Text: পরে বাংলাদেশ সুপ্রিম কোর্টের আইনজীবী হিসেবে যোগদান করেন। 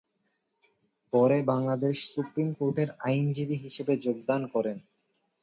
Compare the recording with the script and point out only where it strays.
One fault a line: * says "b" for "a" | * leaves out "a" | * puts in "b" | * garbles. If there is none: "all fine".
all fine